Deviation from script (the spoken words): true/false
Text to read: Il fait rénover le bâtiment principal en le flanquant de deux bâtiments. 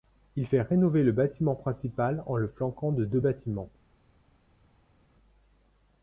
false